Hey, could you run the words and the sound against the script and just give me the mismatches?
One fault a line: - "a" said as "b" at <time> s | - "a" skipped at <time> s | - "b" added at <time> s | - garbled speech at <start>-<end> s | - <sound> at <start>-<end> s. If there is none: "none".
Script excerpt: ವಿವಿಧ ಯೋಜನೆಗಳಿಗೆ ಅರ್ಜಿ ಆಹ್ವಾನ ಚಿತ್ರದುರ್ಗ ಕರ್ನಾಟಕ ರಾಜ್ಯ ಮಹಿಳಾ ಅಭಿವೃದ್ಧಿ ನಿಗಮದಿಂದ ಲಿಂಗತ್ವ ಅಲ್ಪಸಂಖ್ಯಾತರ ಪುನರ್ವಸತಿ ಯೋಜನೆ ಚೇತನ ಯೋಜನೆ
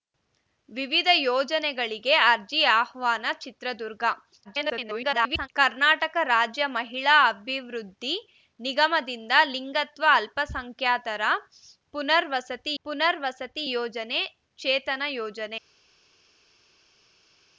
- garbled speech at 4.4-5.5 s
- "ಪುನರ್ವಸತಿ" added at 12.8 s